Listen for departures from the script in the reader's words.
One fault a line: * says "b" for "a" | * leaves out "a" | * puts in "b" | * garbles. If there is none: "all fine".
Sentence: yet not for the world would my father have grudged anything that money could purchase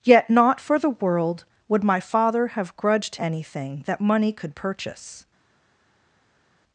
all fine